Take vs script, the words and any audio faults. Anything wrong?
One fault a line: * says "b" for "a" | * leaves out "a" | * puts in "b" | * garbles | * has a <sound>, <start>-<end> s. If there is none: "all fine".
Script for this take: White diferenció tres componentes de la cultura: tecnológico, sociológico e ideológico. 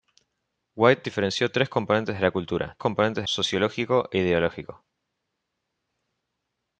* says "componentes" for "tecnológico"